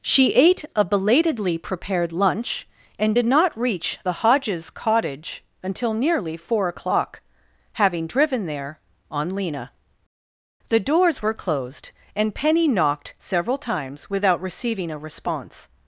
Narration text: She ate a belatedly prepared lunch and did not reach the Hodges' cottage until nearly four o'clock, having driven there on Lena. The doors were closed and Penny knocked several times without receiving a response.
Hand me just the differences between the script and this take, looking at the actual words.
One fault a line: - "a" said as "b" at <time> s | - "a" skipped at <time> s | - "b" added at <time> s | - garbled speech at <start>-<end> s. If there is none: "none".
none